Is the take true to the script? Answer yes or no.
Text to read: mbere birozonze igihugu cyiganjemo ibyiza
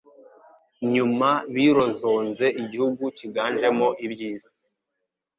no